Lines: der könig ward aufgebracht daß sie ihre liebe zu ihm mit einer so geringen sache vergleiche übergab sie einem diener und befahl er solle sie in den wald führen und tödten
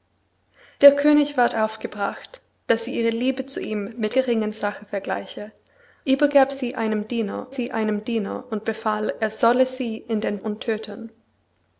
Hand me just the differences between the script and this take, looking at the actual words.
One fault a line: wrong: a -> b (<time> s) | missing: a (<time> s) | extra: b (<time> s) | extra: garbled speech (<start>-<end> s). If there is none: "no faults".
missing: einer so (4.2 s)
extra: sie einem diener (7.5 s)
missing: wald führen (10.4 s)